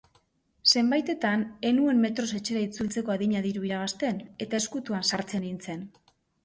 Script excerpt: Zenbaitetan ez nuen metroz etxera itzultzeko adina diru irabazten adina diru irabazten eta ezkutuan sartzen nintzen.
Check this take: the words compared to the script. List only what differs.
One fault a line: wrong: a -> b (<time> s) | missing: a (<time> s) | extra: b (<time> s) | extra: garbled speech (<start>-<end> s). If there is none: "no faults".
missing: adina diru irabazten (4.3 s)